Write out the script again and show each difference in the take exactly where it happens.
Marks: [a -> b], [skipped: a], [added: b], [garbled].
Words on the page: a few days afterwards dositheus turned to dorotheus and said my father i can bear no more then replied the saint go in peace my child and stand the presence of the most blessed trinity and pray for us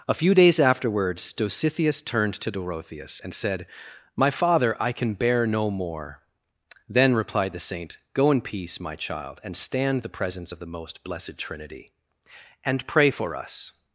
a few days afterwards dositheus turned to dorotheus and said my father i can bear no more then replied the saint go in peace my child and stand the presence of the most blessed trinity and pray for us